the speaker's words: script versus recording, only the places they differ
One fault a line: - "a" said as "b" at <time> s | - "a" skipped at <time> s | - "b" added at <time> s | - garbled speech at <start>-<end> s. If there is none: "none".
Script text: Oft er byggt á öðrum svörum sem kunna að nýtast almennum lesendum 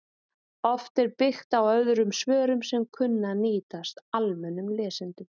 none